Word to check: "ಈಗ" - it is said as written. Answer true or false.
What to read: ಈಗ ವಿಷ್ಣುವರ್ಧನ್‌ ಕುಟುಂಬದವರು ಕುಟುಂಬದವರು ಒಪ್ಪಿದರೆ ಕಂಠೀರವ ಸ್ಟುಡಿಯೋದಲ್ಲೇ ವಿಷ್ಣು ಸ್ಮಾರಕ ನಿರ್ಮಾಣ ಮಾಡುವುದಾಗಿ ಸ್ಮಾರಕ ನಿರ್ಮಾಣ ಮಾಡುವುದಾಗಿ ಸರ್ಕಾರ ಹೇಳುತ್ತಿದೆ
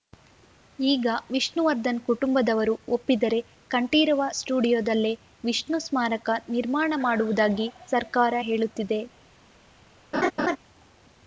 true